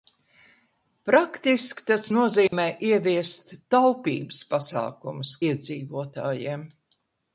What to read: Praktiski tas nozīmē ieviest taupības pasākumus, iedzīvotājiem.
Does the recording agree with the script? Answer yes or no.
yes